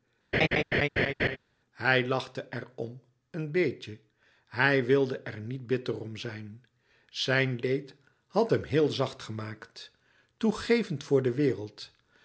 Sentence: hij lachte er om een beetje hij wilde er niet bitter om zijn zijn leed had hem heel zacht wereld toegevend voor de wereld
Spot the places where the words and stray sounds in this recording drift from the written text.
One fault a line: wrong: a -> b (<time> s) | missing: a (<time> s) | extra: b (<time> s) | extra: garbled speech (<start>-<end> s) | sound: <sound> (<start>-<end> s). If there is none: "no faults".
sound: laugh (0.3-1.4 s)
wrong: wereld -> gemaakt (9.2 s)